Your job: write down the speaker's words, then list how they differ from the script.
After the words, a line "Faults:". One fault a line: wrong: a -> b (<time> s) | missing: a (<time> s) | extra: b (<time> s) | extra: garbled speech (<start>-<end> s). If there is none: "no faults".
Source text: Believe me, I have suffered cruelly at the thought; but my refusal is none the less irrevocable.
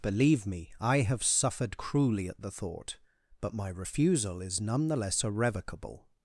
Believe me, I have suffered cruelly at the thought; but my refusal is none the less irrevocable.
Faults:
no faults